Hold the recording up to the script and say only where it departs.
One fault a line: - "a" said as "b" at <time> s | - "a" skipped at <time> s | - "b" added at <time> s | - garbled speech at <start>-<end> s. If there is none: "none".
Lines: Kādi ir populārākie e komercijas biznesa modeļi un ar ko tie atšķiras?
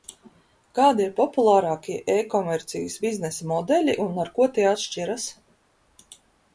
none